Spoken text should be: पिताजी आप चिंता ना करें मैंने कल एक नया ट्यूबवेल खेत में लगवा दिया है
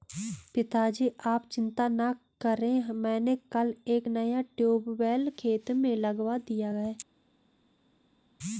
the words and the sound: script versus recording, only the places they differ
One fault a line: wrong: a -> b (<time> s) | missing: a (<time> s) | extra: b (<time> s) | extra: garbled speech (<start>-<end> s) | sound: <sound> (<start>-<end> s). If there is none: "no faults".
no faults